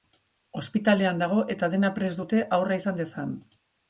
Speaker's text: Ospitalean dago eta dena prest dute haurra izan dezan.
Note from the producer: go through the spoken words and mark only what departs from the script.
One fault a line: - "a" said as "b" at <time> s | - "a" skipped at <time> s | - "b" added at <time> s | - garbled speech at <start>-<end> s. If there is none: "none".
none